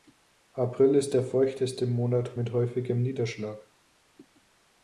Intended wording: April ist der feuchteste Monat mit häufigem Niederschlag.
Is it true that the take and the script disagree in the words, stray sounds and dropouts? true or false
false